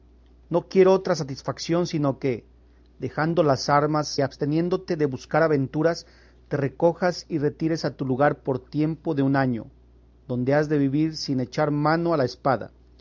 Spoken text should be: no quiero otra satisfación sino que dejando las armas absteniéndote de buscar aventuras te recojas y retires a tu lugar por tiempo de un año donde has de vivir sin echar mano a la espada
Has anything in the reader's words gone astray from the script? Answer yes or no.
no